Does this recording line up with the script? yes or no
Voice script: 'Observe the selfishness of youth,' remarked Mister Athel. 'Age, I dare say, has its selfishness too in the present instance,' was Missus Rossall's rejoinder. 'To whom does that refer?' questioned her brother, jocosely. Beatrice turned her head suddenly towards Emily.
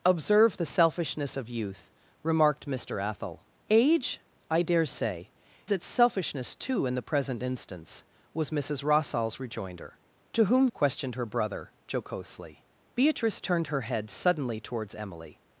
no